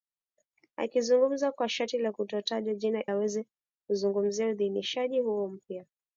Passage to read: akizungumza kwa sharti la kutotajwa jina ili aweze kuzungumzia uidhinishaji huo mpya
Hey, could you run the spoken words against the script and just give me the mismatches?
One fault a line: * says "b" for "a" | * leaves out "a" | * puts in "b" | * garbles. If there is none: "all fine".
* leaves out "ili"